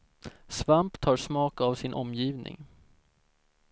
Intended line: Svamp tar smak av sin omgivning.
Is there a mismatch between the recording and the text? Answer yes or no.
no